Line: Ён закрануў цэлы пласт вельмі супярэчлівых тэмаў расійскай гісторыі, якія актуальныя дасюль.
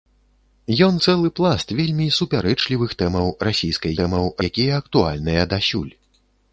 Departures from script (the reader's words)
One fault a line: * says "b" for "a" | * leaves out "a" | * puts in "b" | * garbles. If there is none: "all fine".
* leaves out "закрануў"
* says "тэмаў" for "гісторыі"